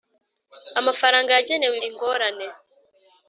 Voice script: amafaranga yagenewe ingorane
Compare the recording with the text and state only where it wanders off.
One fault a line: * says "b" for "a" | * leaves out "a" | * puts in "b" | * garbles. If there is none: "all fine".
all fine